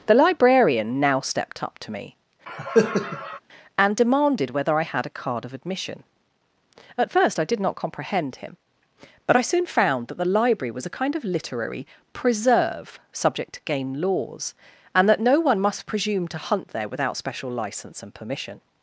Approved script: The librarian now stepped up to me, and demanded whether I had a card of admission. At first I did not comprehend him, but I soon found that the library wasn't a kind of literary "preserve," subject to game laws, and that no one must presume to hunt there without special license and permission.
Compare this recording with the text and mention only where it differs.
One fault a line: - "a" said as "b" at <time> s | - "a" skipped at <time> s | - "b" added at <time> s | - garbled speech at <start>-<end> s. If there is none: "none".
- "wasn't" said as "was" at 10.7 s